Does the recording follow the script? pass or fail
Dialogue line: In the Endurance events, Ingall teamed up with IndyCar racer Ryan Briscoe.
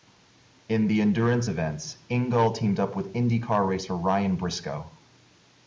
pass